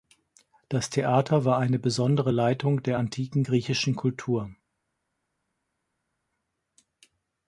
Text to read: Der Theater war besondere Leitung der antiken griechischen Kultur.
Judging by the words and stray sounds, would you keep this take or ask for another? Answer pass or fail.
fail